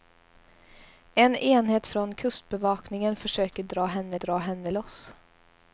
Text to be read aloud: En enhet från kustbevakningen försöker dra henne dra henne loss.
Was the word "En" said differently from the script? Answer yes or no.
no